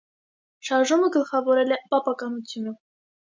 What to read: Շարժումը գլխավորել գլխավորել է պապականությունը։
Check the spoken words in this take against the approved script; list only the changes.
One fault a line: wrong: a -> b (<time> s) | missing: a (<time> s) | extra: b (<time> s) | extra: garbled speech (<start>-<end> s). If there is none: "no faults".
missing: գլխավորել (1.8 s)